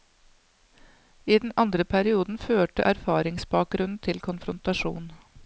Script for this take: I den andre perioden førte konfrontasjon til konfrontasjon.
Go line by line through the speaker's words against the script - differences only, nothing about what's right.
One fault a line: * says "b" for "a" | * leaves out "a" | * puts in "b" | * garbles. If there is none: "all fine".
* says "erfaringsbakgrunnen" for "konfrontasjon"